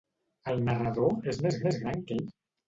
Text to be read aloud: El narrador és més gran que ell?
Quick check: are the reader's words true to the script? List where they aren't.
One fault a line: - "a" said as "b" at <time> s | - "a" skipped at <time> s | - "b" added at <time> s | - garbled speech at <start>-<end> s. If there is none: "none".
- "més" added at 1.7 s